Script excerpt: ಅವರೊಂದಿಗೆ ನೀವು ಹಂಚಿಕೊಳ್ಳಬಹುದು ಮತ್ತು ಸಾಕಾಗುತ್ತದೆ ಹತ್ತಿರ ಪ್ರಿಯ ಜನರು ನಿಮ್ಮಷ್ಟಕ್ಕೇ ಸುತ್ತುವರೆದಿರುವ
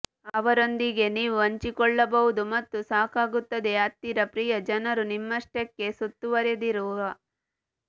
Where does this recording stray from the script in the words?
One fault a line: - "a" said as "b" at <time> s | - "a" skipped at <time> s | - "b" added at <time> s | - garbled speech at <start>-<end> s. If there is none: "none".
none